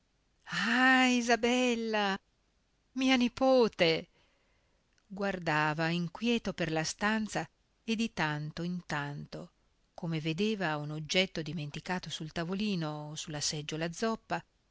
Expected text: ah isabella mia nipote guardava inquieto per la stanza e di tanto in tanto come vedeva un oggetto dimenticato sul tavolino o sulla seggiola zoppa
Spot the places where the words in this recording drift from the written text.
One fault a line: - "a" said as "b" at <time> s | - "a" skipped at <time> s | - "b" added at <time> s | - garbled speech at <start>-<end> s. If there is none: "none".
none